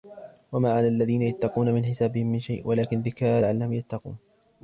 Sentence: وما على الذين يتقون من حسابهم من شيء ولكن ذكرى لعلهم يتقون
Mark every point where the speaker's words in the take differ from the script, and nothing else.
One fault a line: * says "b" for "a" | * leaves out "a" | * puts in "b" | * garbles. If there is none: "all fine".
all fine